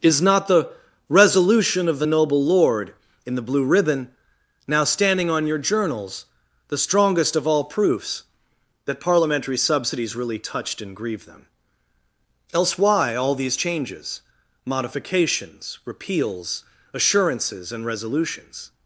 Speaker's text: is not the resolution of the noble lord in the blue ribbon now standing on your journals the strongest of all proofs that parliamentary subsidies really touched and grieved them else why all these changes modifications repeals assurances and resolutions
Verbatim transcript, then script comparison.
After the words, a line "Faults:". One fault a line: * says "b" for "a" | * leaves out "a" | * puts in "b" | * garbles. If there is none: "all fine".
is not the resolution of the noble lord in the blue ribbon now standing on your journals the strongest of all proofs that parliamentary subsidies really touched and grieved them else why all these changes modifications repeals assurances and resolutions
Faults:
all fine